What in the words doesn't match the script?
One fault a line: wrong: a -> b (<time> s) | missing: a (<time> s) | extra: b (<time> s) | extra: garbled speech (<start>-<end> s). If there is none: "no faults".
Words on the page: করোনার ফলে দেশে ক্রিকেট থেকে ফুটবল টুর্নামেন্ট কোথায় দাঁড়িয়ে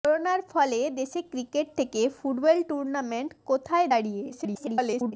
extra: garbled speech (4.3-5.1 s)